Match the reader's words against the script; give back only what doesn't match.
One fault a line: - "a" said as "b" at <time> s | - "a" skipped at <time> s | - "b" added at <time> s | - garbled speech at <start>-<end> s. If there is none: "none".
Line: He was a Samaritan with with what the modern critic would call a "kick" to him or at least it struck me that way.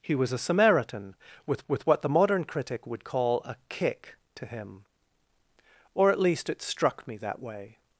none